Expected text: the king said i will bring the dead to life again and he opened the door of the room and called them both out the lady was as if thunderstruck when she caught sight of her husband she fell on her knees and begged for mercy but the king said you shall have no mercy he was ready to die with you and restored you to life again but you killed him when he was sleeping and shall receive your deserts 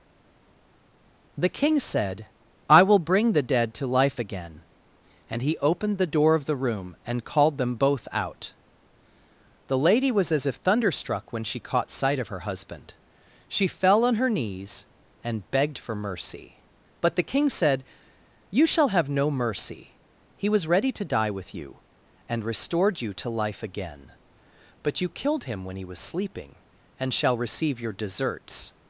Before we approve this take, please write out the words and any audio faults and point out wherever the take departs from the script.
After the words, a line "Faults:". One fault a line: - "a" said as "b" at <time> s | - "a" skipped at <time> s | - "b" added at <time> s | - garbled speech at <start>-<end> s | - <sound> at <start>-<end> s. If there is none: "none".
the king said i will bring the dead to life again and he opened the door of the room and called them both out the lady was as if thunderstruck when she caught sight of her husband she fell on her knees and begged for mercy but the king said you shall have no mercy he was ready to die with you and restored you to life again but you killed him when he was sleeping and shall receive your deserts
Faults:
none